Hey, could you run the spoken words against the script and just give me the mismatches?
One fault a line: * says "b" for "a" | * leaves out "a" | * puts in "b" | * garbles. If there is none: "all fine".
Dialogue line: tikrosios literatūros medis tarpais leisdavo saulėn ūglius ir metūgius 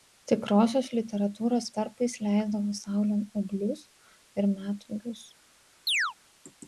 * leaves out "medis"